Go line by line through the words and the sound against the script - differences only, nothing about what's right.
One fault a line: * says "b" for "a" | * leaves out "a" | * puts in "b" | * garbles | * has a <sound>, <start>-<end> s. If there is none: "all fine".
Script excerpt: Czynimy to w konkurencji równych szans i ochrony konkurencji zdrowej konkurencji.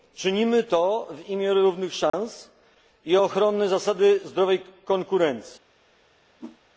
* says "imię" for "konkurencji"
* has a dropout, 2.1-2.1 s
* says "zasady" for "konkurencji"
* has a whoosh, 6.4-6.6 s